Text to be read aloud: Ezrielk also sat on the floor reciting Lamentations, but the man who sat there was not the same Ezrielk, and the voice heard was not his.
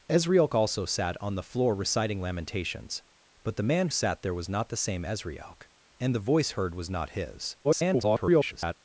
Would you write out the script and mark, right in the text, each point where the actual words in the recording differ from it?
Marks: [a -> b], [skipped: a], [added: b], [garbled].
Ezrielk also sat on the floor reciting Lamentations, but the man [skipped: who] sat there was not the same Ezrielk, and the voice heard was not his. [garbled]